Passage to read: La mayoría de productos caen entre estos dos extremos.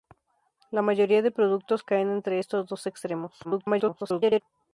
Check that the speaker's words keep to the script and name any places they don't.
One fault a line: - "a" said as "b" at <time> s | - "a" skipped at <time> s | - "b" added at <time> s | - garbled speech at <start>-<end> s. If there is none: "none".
- garbled speech at 3.4-4.4 s